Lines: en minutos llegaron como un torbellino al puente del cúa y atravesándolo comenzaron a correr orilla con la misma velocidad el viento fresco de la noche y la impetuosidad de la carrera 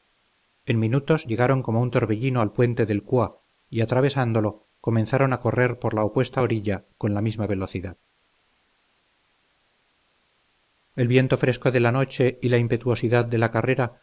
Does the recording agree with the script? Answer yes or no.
no